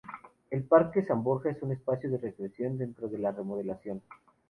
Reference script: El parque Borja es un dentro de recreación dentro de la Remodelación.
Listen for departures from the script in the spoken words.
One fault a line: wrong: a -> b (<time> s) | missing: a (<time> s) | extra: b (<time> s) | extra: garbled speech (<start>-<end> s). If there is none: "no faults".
extra: San (1.0 s)
wrong: dentro -> espacio (1.7 s)